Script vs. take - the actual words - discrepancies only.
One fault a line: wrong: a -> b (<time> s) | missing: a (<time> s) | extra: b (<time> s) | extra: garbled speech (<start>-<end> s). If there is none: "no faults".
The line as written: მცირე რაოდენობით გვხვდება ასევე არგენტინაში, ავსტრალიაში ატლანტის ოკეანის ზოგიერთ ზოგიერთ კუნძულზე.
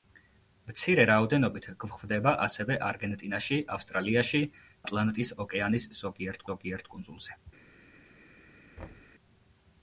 no faults